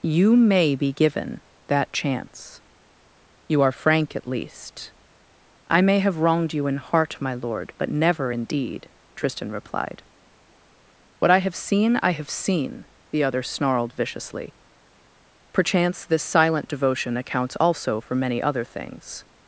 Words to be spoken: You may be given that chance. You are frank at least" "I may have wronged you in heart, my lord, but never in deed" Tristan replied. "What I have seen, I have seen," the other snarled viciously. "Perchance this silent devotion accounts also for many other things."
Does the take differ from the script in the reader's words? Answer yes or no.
no